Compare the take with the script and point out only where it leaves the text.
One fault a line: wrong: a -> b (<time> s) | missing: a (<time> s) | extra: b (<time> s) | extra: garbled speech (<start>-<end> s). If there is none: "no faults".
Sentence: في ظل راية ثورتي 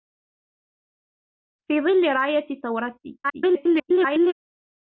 extra: garbled speech (3.2-4.3 s)